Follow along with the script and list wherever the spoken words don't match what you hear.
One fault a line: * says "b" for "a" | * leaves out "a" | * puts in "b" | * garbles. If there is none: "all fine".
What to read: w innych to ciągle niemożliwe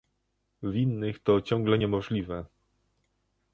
all fine